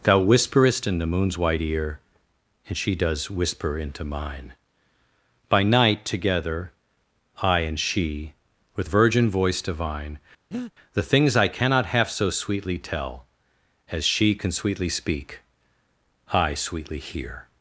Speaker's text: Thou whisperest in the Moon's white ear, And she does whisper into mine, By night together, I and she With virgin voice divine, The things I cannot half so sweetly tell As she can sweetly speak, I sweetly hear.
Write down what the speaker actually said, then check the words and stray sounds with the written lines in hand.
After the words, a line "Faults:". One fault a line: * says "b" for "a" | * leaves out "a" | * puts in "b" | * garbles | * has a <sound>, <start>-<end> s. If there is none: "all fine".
Thou whisperest in the Moon's white ear, And she does whisper into mine, By night together, I and she With virgin voice divine, The things I cannot half so sweetly tell As she can sweetly speak, I sweetly hear.
Faults:
* has a breath, 10.5-10.7 s